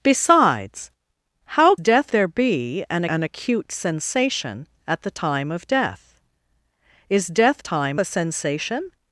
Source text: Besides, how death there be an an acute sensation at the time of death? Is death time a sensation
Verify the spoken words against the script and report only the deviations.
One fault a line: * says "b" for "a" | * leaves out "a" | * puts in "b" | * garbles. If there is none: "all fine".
all fine